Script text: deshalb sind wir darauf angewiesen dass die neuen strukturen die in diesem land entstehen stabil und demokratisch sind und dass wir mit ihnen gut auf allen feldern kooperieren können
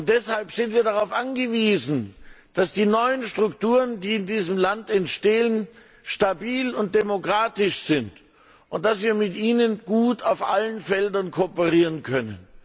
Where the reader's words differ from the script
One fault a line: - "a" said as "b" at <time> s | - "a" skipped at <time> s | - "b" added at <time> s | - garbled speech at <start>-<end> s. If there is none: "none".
none